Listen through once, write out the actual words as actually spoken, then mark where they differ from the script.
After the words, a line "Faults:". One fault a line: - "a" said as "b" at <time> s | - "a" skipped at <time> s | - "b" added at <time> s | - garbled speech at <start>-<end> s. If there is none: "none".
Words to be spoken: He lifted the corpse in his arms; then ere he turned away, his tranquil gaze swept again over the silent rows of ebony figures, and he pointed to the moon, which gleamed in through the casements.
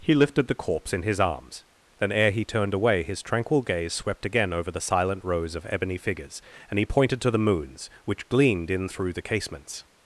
He lifted the corpse in his arms; then ere he turned away, his tranquil gaze swept again over the silent rows of ebony figures, and he pointed to the moons, which gleamed in through the casements.
Faults:
- "moon" said as "moons" at 7.4 s